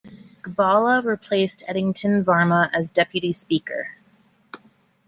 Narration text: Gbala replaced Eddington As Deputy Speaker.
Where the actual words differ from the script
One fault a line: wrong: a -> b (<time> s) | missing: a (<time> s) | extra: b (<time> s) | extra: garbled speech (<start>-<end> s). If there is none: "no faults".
extra: Varmah (2.2 s)